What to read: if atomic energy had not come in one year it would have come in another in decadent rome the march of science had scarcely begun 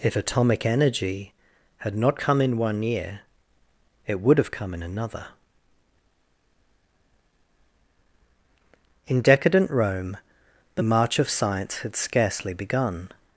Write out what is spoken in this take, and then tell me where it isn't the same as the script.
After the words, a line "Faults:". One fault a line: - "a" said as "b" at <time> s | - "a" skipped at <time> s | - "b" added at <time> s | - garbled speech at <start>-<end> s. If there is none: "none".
if atomic energy had not come in one year it would have come in another in decadent rome the march of science had scarcely begun
Faults:
none